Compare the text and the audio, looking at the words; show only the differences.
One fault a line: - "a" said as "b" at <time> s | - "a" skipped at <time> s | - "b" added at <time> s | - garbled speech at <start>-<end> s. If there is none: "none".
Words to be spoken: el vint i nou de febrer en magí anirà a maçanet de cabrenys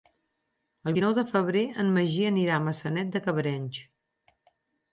- "vint" skipped at 1.0 s